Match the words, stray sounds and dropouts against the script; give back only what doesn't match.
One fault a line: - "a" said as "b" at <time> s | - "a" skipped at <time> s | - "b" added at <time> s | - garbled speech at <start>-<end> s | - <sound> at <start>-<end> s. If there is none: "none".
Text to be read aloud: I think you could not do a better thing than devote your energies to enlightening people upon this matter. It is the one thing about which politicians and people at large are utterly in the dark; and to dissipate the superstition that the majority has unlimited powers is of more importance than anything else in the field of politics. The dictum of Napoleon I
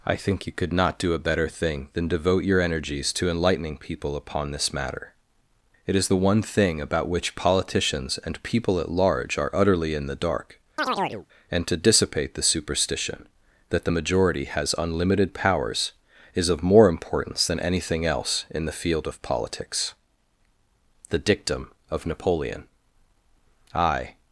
- chirp at 10.8-11.3 s